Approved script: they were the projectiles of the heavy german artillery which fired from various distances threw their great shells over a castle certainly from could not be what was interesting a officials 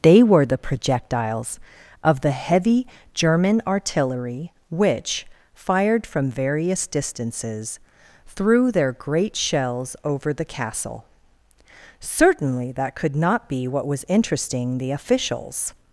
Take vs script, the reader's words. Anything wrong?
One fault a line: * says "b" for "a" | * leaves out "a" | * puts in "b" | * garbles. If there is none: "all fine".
* says "the" for "a"
* says "that" for "from"
* says "the" for "a"